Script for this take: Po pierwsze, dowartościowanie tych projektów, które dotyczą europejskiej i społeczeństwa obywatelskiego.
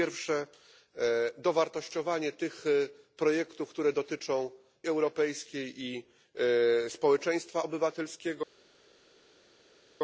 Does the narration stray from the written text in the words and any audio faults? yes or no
no